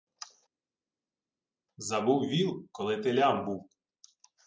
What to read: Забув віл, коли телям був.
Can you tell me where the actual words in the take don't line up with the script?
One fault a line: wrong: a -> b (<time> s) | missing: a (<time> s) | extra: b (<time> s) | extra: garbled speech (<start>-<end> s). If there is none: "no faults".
no faults